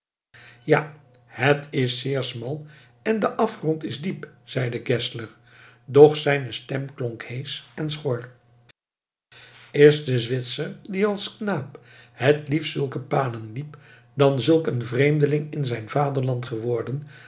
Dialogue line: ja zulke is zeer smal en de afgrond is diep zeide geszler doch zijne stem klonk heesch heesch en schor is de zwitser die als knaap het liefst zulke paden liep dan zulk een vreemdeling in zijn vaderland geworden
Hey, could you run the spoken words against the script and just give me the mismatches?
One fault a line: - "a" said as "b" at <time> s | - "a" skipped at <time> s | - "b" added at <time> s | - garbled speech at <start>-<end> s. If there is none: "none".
- "zulke" said as "het" at 1.2 s
- "heesch" skipped at 7.6 s